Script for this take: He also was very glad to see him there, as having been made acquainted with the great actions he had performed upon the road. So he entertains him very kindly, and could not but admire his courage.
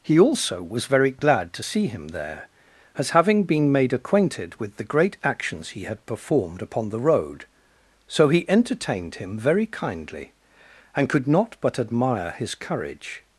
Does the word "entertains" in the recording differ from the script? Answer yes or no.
yes